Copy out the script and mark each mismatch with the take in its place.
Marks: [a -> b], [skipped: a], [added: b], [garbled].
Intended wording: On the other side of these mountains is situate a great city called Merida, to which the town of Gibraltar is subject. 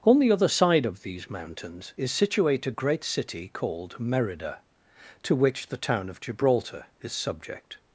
On the other side of these mountains is situate a great city called Merida, to which the town of Gibraltar is subject.